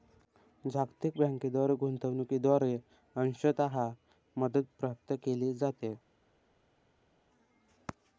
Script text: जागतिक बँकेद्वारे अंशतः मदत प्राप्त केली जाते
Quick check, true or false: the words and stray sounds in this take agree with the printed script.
false